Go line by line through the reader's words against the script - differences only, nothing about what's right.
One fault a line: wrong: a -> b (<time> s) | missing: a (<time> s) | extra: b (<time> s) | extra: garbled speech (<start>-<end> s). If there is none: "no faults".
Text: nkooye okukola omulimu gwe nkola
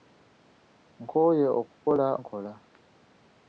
missing: omulimu gwe (2.1 s)